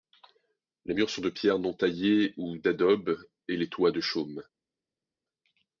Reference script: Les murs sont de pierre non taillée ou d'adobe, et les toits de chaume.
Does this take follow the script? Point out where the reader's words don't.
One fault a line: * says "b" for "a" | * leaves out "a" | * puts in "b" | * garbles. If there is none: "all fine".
all fine